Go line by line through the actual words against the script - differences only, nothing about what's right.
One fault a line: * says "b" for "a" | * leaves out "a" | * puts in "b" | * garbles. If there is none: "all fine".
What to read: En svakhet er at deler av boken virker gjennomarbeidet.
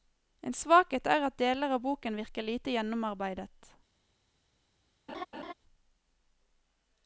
* puts in "lite"